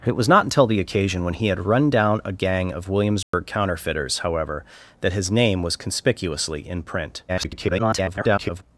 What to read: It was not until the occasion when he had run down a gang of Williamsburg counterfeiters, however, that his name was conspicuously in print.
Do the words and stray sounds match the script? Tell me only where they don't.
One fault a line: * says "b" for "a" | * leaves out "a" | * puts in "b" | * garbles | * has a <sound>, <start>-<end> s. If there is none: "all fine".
* has a dropout, 3.2-3.3 s
* garbles